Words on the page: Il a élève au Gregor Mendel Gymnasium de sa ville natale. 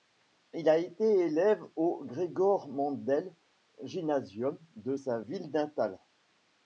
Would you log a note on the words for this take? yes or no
yes